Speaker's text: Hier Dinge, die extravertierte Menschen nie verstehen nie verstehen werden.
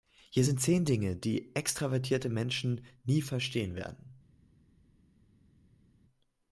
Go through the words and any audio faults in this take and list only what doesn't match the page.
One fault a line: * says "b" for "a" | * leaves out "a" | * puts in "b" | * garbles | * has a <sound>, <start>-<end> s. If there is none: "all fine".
* puts in "sind zehn"
* leaves out "nie verstehen"